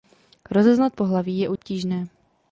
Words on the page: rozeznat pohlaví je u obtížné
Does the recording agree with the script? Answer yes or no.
yes